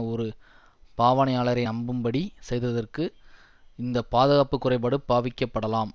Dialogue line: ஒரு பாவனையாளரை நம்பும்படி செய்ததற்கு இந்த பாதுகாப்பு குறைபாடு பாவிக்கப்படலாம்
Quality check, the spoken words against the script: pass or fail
pass